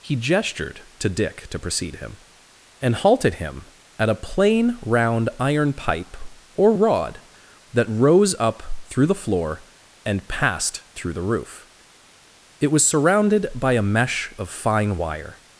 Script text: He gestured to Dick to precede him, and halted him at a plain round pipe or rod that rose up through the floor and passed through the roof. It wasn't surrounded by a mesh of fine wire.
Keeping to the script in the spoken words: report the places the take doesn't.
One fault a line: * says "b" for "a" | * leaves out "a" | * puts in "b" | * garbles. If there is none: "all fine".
* puts in "iron"
* says "was" for "wasn't"